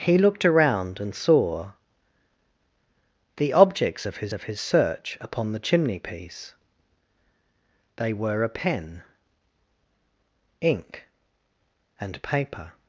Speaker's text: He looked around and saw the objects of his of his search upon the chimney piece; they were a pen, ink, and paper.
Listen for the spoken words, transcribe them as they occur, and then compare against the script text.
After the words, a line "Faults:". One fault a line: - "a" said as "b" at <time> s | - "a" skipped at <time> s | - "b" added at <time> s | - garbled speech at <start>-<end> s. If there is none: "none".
He looked around and saw the objects of his of his search upon the chimney piece; they were a pen, ink, and paper.
Faults:
none